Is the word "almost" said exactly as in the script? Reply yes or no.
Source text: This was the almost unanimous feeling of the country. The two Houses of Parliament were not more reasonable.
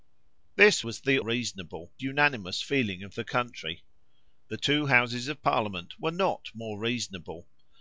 no